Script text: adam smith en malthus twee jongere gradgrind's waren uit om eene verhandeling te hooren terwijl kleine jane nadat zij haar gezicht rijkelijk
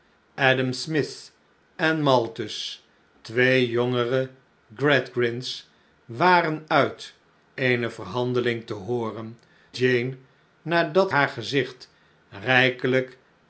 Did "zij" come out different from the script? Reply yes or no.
yes